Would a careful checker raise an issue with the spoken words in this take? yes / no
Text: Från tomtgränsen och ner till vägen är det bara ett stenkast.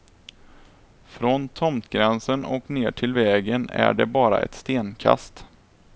no